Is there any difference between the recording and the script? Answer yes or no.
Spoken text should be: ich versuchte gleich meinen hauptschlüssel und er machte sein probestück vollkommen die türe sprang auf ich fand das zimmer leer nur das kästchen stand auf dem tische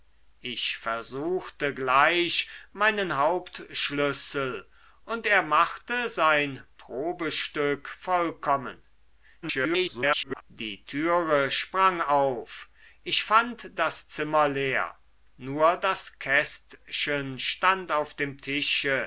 yes